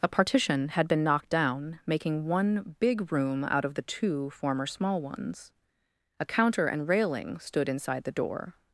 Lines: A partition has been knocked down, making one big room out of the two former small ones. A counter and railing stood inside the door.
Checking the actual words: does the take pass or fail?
fail